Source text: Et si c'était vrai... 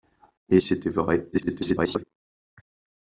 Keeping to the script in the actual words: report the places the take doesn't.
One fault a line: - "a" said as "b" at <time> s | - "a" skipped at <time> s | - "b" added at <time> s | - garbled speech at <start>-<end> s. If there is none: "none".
- "si" skipped at 0.6 s
- garbled speech at 1.3-2.0 s